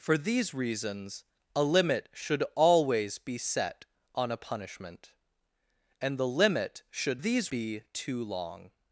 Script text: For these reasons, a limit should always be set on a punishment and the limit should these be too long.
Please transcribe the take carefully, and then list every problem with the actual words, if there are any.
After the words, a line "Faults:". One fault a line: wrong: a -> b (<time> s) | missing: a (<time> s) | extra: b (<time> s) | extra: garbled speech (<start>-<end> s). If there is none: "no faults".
For these reasons, a limit should always be set on a punishment and the limit should these be too long.
Faults:
no faults